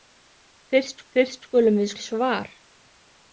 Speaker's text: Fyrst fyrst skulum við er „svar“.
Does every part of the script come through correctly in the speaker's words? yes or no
yes